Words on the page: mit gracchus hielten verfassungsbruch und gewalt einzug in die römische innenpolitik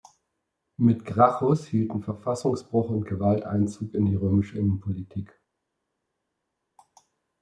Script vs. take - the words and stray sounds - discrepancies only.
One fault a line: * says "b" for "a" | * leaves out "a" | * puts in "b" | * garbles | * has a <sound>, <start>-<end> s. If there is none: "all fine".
all fine